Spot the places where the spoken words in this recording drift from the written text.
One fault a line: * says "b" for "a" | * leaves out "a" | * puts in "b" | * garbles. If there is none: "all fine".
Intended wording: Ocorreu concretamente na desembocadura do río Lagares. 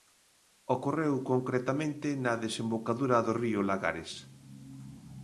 all fine